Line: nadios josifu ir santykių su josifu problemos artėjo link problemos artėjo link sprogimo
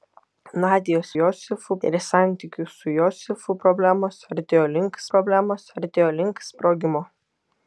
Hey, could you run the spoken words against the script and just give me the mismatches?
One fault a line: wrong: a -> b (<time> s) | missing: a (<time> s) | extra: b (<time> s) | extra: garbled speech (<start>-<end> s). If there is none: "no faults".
no faults